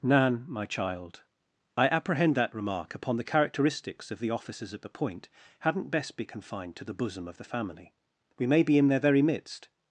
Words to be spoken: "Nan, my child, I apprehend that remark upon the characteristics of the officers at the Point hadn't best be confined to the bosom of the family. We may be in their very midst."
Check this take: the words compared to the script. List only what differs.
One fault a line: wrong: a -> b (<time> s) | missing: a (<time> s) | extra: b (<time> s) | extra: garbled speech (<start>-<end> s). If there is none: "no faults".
no faults